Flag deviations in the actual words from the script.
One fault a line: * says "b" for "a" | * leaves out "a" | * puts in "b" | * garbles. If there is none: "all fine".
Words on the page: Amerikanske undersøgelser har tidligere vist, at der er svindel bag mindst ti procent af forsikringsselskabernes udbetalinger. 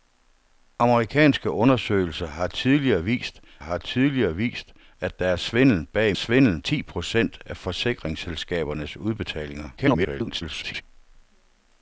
* puts in "har tidligere vist"
* says "svindel" for "mindst"
* garbles